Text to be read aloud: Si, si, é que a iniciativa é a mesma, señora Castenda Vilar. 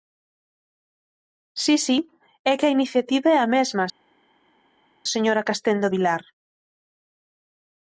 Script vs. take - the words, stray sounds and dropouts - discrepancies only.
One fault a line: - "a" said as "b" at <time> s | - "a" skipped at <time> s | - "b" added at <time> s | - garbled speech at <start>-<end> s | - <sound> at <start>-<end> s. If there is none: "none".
none